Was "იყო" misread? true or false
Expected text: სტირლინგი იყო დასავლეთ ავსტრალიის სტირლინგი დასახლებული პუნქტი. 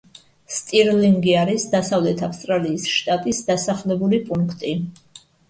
true